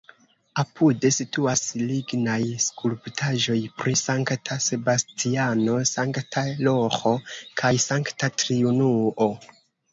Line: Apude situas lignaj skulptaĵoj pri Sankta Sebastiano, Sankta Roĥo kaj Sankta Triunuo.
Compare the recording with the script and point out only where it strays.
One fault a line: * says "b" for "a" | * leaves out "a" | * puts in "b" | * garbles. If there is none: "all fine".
all fine